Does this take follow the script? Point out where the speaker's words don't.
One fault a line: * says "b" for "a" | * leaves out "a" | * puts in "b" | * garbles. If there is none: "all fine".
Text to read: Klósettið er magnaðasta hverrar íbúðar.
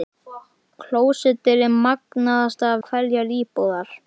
all fine